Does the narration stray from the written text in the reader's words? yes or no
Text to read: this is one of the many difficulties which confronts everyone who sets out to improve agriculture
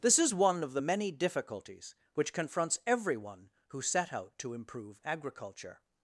yes